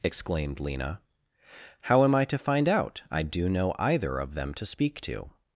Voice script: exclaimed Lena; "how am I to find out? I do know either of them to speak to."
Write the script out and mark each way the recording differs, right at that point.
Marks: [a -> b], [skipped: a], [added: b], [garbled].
exclaimed Lena; "how am I to find out? I do know either of them to speak to."